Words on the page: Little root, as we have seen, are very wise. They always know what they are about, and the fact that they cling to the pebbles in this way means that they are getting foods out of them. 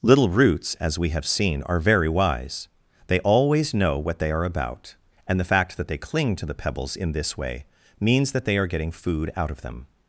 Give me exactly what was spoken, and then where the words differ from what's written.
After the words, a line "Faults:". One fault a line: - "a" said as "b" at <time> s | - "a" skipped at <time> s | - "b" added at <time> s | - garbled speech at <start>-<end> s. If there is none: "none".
Little roots, as we have seen, are very wise. They always know what they are about, and the fact that they cling to the pebbles in this way means that they are getting food out of them.
Faults:
- "root" said as "roots" at 0.3 s
- "foods" said as "food" at 8.9 s